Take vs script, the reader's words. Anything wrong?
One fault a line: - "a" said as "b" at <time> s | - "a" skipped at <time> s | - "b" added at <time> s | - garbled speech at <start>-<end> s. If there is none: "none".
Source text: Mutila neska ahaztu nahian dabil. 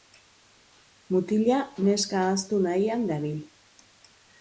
none